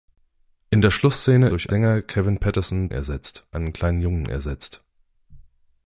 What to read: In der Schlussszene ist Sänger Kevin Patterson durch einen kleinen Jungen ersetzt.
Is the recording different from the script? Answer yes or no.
yes